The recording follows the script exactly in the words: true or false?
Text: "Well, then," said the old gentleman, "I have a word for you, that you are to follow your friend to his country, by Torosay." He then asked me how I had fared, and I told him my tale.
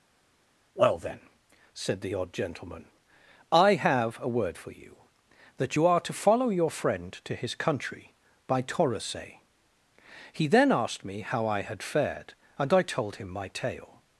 false